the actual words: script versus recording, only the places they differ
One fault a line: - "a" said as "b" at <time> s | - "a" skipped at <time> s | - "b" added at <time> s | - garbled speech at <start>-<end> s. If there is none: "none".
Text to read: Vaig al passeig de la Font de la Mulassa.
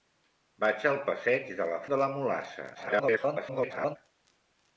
- "Font" skipped at 1.8 s
- garbled speech at 2.7-4.0 s